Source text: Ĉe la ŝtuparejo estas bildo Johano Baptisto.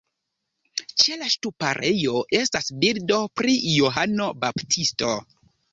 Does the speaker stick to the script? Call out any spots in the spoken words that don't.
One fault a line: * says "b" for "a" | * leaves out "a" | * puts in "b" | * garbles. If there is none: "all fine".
* puts in "pri"